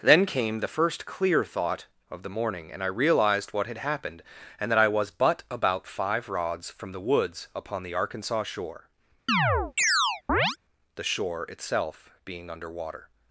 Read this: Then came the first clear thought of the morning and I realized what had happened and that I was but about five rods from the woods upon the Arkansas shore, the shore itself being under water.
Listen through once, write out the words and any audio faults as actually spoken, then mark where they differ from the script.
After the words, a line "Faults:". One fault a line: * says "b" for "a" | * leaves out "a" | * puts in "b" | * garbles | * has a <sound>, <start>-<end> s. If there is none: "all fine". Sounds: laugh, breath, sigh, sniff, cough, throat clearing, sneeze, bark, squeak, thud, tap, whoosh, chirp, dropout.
Then came the first clear thought of the morning and I realized what had happened and that I was but about five rods from the woods upon the Arkansas shore, the shore itself being under water.
Faults:
* has a chirp, 9.3-10.6 s